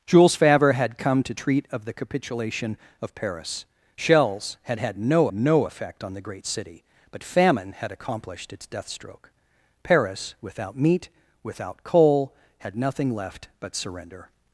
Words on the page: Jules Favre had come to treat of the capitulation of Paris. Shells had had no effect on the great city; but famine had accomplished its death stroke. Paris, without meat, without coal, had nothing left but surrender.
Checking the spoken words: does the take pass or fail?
fail